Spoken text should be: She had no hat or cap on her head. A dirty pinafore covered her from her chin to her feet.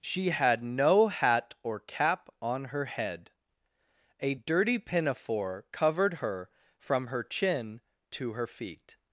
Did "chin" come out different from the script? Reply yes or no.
no